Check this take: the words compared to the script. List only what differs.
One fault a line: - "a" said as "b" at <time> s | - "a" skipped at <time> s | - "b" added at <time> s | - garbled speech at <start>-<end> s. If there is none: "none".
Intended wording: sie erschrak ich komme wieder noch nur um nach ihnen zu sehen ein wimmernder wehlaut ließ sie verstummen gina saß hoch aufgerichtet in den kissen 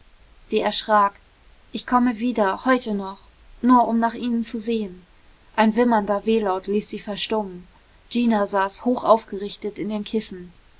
- "heute" added at 2.6 s